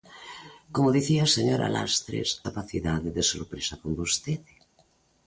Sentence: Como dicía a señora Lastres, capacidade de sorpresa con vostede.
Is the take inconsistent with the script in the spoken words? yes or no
no